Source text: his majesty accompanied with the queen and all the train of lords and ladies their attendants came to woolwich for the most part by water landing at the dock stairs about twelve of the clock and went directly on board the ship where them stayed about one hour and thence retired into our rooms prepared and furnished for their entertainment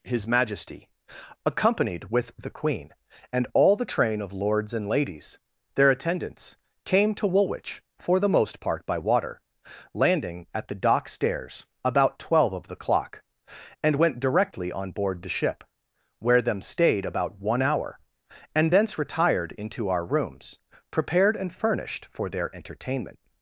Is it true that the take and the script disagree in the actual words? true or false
false